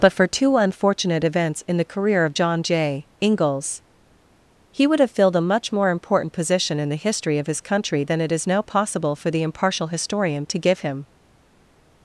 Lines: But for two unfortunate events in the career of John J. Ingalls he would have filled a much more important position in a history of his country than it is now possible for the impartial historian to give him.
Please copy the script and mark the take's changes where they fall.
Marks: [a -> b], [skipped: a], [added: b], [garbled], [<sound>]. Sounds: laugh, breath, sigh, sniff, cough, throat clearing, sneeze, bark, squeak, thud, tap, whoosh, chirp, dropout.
But for two unfortunate events in the career of John J. Ingalls he would have filled a much more important position in [a -> the] history of his country than it is now possible for the impartial historian to give him.